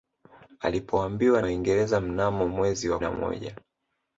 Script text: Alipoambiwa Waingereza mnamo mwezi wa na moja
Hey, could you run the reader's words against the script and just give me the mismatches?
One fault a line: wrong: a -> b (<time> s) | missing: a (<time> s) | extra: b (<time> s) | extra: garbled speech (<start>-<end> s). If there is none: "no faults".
no faults